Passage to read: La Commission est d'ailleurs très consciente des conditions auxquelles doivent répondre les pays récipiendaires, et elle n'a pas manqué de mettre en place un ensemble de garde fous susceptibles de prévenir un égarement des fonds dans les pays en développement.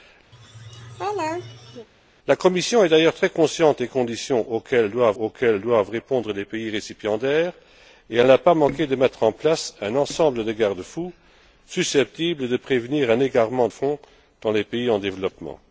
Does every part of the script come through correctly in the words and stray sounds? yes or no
no